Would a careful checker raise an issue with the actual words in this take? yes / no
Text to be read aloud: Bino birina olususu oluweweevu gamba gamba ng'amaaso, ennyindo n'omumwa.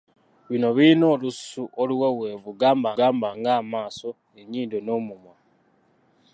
no